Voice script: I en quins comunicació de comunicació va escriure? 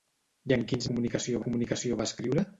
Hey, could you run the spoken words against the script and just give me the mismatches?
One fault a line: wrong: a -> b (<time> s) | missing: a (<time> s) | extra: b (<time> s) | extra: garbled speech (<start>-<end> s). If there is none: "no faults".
no faults